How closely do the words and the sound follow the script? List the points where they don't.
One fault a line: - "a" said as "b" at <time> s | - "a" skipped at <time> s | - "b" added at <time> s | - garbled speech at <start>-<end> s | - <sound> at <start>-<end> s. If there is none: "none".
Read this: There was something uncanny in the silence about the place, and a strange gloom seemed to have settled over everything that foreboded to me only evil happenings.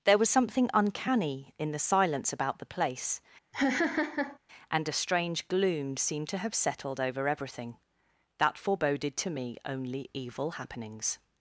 - laugh at 3.5-4.4 s